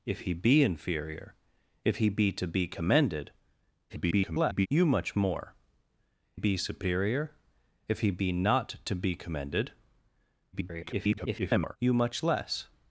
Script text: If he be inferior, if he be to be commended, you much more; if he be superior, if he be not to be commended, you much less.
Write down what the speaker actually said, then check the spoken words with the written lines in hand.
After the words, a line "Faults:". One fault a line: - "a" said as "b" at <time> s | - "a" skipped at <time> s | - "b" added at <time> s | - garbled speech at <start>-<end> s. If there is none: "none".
If he be inferior, if he be to be commended, [garbled] you much more; be superior, if he be not to be commended, [garbled] you much less.
Faults:
- garbled speech at 3.9-4.7 s
- "if he" skipped at 5.5 s
- garbled speech at 10.5-11.8 s